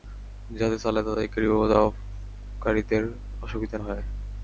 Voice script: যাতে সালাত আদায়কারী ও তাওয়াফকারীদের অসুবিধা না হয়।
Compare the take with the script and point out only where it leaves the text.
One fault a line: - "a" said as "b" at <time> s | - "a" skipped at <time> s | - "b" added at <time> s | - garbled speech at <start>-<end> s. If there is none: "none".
- "না" skipped at 3.8 s